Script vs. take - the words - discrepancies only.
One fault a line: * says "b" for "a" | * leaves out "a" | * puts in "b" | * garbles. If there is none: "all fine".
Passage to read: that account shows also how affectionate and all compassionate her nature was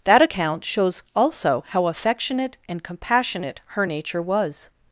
* leaves out "all"